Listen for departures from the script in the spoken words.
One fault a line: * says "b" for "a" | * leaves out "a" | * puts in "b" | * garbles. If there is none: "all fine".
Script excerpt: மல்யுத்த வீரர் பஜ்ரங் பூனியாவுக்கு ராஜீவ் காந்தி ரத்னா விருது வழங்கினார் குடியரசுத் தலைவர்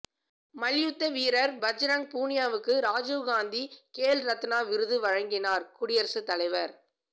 * puts in "கேல்"